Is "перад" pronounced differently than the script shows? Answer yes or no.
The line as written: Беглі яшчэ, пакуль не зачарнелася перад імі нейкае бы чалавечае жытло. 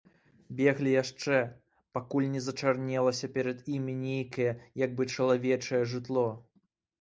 no